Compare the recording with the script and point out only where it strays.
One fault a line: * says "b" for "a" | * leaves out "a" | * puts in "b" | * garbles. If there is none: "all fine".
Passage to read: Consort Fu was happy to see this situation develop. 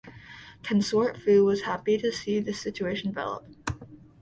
all fine